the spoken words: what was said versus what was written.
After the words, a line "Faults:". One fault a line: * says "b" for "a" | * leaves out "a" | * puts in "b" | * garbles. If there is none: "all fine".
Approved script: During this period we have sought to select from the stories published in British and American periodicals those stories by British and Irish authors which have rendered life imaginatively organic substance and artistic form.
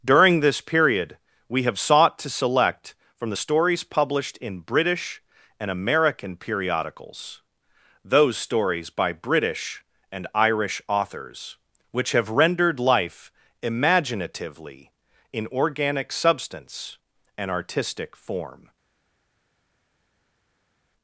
During this period we have sought to select from the stories published in British and American periodicals those stories by British and Irish authors which have rendered life imaginatively in organic substance and artistic form.
Faults:
* puts in "in"